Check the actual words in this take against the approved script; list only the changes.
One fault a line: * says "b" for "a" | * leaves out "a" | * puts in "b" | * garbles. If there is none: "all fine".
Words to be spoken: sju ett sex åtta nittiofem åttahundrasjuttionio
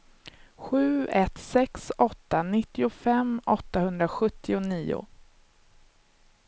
all fine